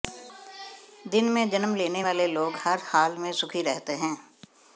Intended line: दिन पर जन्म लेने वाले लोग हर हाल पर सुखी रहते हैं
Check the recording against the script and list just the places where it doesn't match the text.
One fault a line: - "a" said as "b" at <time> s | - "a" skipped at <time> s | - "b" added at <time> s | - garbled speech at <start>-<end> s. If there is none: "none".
- "पर" said as "में" at 1.2 s
- "पर" said as "में" at 3.2 s